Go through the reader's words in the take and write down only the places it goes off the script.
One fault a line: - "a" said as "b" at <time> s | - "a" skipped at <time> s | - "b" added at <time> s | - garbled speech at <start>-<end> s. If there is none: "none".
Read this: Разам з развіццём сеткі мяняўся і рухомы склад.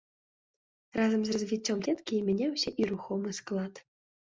none